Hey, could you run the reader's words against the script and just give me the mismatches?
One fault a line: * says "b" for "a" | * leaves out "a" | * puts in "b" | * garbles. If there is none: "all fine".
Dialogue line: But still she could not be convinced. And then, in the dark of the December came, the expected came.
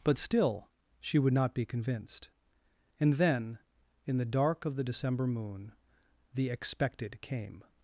* says "would" for "could"
* says "moon" for "came"